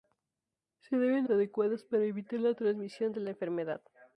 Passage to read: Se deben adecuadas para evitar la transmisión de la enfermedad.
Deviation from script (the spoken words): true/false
false